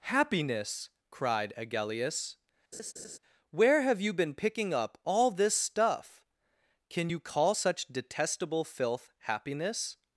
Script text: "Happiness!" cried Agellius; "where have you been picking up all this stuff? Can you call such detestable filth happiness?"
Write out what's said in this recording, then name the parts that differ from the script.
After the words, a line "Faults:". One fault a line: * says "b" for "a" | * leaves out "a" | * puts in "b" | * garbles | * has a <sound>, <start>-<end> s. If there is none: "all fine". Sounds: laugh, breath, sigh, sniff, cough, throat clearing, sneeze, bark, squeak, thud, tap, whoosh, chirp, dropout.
"Happiness!" cried Agellius; "where have you been picking up all this stuff? Can you call such detestable filth happiness?"
Faults:
* has a laugh, 2.7-3.2 s